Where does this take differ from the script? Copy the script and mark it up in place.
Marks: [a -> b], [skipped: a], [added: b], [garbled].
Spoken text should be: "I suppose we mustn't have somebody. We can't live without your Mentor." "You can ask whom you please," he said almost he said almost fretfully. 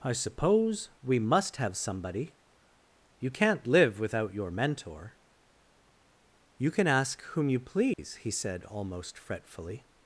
"I suppose we [mustn't -> must] have somebody. [We -> You] can't live without your Mentor." "You can ask whom you please," he said almost [skipped: he said almost] fretfully.